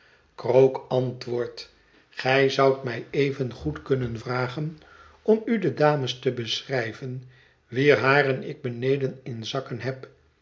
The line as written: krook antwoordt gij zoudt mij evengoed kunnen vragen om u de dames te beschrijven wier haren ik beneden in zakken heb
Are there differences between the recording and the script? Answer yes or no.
no